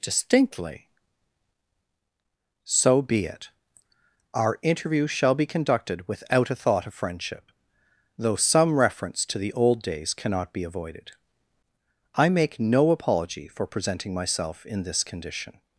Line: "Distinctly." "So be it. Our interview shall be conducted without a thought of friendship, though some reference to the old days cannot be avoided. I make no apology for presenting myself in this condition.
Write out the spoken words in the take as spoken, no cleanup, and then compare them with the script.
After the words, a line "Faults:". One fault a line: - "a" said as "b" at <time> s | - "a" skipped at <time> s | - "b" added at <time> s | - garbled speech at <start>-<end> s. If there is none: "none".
"Distinctly." "So be it. Our interview shall be conducted without a thought of friendship, though some reference to the old days cannot be avoided. I make no apology for presenting myself in this condition.
Faults:
none